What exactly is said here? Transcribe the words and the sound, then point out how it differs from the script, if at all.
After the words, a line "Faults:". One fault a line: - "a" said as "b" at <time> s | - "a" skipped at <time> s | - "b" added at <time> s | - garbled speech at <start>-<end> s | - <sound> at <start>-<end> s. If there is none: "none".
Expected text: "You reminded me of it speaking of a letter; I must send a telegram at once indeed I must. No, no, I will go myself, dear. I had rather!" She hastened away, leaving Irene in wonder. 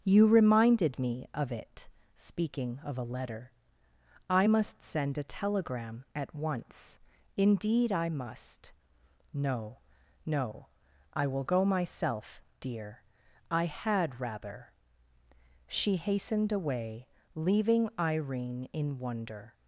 "You reminded me of it speaking of a letter; I must send a telegram at once indeed I must. No, no, I will go myself, dear. I had rather!" She hastened away, leaving Irene in wonder.
Faults:
none